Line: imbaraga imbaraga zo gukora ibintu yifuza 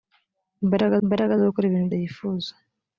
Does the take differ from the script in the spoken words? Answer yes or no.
no